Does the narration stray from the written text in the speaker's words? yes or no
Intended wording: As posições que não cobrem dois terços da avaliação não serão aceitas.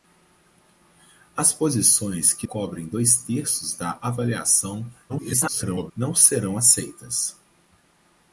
yes